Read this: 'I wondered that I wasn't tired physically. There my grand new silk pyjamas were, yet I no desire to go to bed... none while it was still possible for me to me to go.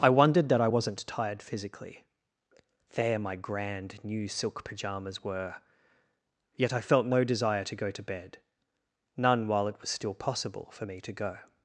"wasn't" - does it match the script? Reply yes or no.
yes